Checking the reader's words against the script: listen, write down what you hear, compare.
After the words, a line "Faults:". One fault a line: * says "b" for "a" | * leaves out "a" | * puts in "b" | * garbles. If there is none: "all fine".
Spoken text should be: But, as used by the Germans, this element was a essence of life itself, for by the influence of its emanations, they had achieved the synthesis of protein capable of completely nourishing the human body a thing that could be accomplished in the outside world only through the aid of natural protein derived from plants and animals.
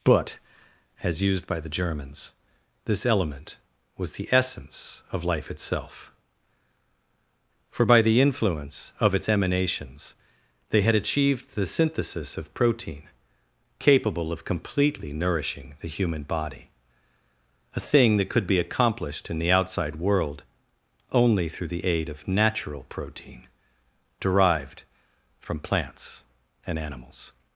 But, as used by the Germans, this element was the essence of life itself, for by the influence of its emanations, they had achieved the synthesis of protein capable of completely nourishing the human body a thing that could be accomplished in the outside world only through the aid of natural protein derived from plants and animals.
Faults:
* says "the" for "a"